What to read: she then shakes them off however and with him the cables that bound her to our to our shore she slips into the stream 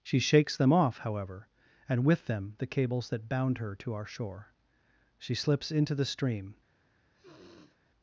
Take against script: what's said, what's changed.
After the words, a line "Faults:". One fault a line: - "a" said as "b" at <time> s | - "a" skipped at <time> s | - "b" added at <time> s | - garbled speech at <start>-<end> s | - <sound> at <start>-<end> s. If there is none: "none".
she shakes them off however and with them the cables that bound her to our shore she slips into the stream
Faults:
- "then" skipped at 0.2 s
- "him" said as "them" at 2.2 s
- "to our" skipped at 4.0 s
- sniff at 7.1-7.8 s